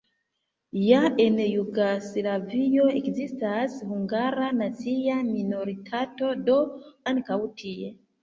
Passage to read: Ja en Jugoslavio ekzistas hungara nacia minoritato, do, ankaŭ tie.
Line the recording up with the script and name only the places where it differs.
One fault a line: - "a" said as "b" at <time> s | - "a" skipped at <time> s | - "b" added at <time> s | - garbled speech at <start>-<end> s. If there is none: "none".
none